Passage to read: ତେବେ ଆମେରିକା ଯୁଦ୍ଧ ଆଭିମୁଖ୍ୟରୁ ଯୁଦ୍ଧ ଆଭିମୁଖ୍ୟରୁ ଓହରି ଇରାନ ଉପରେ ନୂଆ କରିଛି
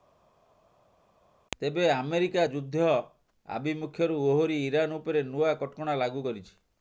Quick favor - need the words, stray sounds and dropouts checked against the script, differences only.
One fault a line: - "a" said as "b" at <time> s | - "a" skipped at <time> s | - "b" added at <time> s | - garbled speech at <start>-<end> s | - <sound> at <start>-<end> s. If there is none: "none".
- "ଯୁଦ୍ଧ ଆଭିମୁଖ୍ୟରୁ" skipped at 4.2 s
- "କଟକଣା ଲାଗୁ" added at 5.6 s